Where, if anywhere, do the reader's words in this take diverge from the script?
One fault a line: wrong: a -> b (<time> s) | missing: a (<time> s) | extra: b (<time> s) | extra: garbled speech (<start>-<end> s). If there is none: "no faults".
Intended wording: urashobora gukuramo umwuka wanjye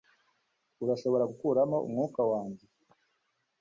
no faults